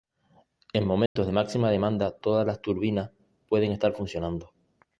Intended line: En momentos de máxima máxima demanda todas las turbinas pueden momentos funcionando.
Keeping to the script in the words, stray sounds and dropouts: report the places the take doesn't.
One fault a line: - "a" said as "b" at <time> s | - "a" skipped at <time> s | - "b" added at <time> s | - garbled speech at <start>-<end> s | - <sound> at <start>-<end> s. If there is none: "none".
- dropout at 1.1-1.2 s
- "máxima" skipped at 1.7 s
- "momentos" said as "estar" at 3.7 s